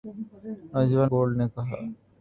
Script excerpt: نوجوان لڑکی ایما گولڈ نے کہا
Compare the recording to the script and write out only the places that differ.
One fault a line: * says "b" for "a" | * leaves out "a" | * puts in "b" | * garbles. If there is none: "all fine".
* leaves out "لڑکی ایما"